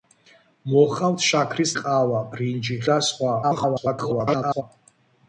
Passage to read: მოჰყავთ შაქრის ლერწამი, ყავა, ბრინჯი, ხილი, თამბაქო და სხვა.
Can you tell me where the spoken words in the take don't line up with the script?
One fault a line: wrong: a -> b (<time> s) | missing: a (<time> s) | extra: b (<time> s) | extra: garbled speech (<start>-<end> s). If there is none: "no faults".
missing: ლერწამი (1.7 s)
missing: ხილი თამბაქო (2.8 s)
extra: garbled speech (3.4-4.6 s)